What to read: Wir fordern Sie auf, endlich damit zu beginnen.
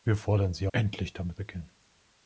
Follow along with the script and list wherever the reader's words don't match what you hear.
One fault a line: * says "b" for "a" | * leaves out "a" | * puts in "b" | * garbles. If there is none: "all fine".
* leaves out "auf"
* leaves out "zu"